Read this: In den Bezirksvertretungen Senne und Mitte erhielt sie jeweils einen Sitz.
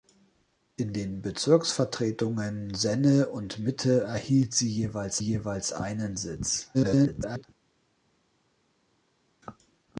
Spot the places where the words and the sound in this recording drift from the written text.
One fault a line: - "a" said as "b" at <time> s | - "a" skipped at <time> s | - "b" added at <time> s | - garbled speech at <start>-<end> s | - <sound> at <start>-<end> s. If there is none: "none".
- "jeweils" added at 5.2 s
- garbled speech at 6.7-7.4 s